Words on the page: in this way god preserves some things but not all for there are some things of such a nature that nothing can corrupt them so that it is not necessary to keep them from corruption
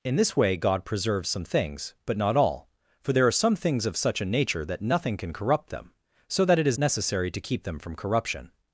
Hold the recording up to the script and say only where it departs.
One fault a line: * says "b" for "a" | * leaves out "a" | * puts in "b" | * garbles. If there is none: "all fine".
* leaves out "not"